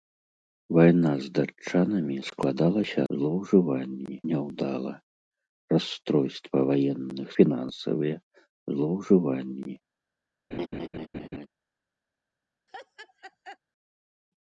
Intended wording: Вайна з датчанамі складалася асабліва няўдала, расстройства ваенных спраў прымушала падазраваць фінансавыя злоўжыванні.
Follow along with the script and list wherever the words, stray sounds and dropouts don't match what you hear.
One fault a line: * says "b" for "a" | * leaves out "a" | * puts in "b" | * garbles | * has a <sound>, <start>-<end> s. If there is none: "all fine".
* says "злоўжыванні" for "асабліва"
* leaves out "спраў прымушала падазраваць"
* has a laugh, 10.5-11.5 s
* has a laugh, 12.7-13.6 s